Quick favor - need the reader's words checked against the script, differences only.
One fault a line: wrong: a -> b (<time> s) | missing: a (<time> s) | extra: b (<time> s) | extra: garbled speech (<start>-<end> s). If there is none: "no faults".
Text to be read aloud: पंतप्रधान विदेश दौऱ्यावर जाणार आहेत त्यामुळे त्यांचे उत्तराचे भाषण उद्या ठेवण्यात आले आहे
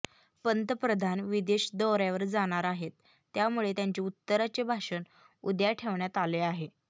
no faults